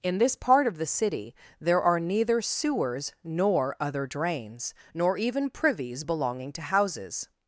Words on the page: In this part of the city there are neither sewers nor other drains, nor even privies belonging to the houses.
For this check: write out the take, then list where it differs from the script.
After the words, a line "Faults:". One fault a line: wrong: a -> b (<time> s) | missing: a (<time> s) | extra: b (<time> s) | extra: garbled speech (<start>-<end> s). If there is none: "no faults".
In this part of the city there are neither sewers nor other drains, nor even privies belonging to houses.
Faults:
missing: the (6.6 s)